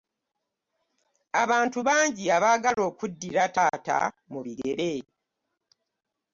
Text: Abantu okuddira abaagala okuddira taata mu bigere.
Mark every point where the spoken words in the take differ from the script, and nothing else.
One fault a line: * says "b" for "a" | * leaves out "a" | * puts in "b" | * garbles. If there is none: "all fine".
* says "bangi" for "okuddira"